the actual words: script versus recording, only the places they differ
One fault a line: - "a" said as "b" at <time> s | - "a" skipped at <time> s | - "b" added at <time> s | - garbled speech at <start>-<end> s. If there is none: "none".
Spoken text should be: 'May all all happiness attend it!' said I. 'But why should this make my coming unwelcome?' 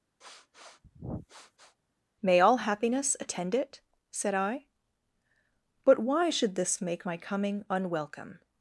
- "all" skipped at 2.6 s